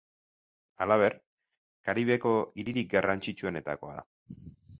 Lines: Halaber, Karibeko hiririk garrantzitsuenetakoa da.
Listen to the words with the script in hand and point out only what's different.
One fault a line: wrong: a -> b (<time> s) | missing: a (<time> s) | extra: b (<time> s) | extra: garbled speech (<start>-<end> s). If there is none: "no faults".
no faults